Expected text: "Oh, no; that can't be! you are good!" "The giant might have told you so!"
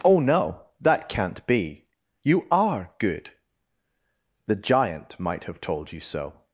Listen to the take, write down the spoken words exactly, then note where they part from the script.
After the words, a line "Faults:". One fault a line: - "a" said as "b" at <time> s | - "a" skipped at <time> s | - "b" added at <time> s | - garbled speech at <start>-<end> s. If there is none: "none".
"Oh, no; that can't be! you are good!" "The giant might have told you so!"
Faults:
none